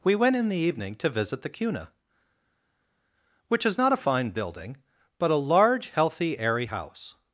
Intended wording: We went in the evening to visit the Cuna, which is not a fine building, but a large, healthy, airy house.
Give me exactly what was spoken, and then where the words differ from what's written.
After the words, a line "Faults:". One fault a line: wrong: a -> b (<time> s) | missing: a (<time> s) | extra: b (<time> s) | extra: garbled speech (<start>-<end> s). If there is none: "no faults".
We went in the evening to visit the Cuna, which is not a fine building, but a large, healthy, airy house.
Faults:
no faults